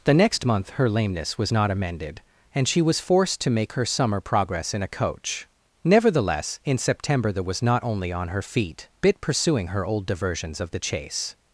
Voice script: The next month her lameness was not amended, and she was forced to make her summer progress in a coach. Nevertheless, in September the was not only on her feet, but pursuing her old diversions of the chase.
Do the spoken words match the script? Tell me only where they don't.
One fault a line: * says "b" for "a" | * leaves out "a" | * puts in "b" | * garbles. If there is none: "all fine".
* says "bit" for "but"